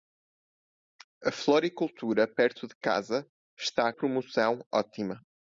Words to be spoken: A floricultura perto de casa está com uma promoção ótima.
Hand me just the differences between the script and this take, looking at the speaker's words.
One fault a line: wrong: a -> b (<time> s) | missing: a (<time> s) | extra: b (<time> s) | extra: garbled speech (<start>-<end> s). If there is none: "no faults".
missing: com uma (3.9 s)